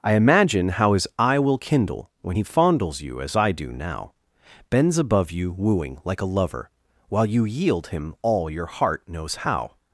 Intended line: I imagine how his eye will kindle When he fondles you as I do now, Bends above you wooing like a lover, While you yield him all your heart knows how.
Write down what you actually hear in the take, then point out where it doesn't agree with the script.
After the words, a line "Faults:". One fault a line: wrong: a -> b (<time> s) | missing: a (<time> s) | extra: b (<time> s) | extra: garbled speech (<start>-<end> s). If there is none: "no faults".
I imagine how his eye will kindle When he fondles you as I do now, Bends above you wooing like a lover, While you yield him all your heart knows how.
Faults:
no faults